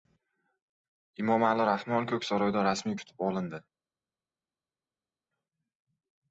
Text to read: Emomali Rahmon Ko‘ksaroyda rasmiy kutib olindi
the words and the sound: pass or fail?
pass